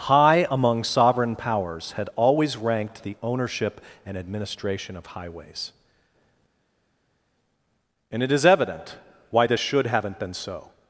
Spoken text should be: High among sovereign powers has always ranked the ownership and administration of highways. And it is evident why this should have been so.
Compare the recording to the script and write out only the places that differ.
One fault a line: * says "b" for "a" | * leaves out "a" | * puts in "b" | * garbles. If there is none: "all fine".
* says "had" for "has"
* says "haven't" for "have"